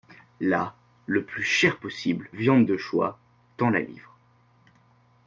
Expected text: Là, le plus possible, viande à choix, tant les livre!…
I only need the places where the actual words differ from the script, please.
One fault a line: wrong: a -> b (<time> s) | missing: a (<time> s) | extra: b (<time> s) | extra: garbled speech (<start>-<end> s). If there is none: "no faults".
extra: cher (1.4 s)
wrong: à -> de (2.7 s)
wrong: les -> la (3.7 s)